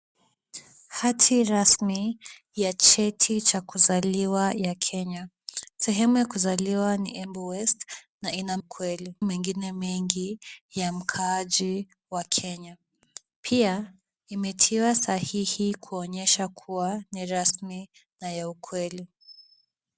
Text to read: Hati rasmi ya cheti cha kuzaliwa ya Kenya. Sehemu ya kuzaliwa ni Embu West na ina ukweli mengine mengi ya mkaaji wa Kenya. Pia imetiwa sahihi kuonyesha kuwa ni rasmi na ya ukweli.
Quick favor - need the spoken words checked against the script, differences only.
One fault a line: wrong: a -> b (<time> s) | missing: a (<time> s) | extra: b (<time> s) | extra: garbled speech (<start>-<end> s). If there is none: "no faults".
no faults